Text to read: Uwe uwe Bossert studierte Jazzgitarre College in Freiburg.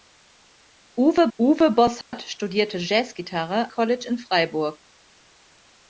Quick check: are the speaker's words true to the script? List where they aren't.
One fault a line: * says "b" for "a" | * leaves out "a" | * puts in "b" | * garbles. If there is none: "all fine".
all fine